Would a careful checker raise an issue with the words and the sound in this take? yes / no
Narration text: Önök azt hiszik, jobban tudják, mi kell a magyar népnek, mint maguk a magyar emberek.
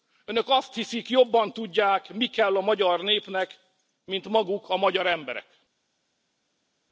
no